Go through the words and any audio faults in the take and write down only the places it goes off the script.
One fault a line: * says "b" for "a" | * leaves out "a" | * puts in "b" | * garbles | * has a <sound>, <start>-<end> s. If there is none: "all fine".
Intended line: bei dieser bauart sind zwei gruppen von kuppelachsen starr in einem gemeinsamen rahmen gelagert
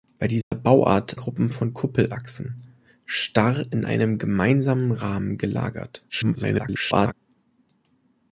* has a dropout, 0.4-0.5 s
* leaves out "sind zwei"
* garbles